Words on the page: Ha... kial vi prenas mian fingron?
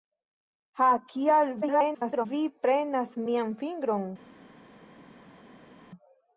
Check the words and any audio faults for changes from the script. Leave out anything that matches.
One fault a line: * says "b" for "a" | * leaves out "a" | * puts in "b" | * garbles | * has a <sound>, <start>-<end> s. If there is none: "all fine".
* garbles